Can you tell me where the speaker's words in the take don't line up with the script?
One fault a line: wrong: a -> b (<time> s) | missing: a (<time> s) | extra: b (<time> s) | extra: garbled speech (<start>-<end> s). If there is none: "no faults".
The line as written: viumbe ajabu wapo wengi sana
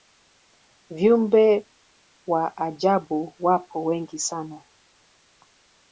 extra: wa (2.3 s)